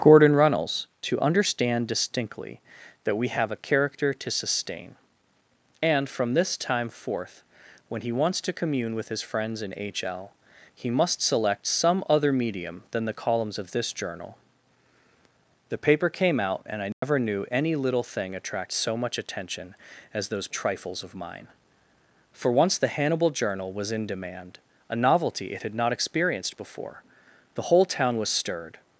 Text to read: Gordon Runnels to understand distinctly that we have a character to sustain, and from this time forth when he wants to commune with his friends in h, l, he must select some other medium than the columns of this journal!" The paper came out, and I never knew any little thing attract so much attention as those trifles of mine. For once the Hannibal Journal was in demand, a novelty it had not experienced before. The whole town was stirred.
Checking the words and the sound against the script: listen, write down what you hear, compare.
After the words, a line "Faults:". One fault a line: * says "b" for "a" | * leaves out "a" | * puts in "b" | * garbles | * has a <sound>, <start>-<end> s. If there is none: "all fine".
Gordon Runnels to understand distinctly that we have a character to sustain, and from this time forth when he wants to commune with his friends in h, l, he must select some other medium than the columns of this journal!" The paper came out, and I never knew any little thing attract so much attention as those trifles of mine. For once the Hannibal Journal was in demand, a novelty it had not experienced before. The whole town was stirred.
Faults:
* has a dropout, 16.9-17.0 s